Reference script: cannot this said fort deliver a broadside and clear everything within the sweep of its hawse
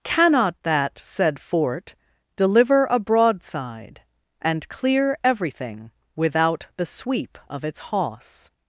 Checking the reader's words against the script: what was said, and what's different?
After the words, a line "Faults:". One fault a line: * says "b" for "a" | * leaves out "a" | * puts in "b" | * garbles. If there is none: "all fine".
cannot that said fort deliver a broadside and clear everything without the sweep of its hawse
Faults:
* says "that" for "this"
* says "without" for "within"